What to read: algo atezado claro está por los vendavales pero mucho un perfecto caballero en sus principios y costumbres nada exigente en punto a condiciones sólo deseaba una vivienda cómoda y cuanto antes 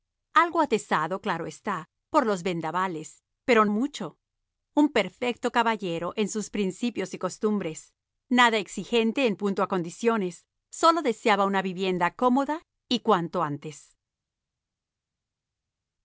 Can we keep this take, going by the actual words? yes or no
yes